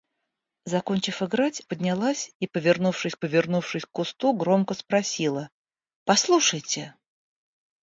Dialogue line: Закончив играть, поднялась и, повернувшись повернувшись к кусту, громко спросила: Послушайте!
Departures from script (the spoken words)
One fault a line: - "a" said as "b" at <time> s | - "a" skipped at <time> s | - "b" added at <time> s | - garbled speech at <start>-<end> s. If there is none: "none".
none